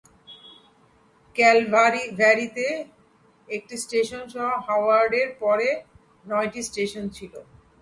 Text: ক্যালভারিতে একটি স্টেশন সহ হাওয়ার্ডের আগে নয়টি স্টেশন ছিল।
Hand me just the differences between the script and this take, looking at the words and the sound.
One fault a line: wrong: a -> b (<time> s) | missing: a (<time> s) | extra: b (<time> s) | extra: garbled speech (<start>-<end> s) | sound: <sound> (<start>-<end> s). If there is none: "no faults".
wrong: আগে -> পরে (5.4 s)